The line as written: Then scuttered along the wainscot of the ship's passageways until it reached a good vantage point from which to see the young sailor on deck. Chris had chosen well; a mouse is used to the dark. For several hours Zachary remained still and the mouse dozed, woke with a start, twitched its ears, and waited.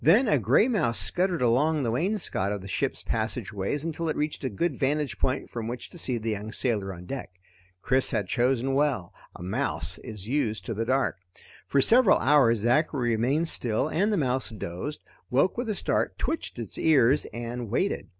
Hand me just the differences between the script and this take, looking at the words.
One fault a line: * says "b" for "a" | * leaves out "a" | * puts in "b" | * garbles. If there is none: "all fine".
* puts in "a gray mouse"